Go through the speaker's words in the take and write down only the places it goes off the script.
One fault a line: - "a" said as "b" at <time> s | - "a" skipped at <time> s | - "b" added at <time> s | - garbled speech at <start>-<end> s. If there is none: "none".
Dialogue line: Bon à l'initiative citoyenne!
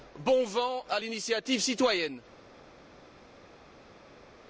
- "vent" added at 0.5 s